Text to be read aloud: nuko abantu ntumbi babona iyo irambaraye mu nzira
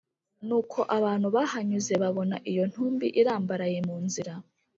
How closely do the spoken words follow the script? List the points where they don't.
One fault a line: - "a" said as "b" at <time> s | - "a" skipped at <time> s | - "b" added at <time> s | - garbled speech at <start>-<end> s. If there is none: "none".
- "ntumbi" said as "bahanyuze" at 1.4 s
- "ntumbi" added at 2.7 s